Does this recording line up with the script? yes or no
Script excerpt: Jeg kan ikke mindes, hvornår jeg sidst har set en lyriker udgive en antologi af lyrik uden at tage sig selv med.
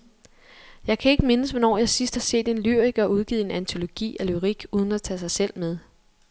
yes